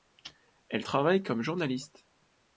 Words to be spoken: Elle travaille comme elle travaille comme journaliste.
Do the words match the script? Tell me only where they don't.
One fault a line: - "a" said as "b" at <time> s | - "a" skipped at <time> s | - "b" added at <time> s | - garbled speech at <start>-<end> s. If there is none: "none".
- "elle travaille comme" skipped at 1.4 s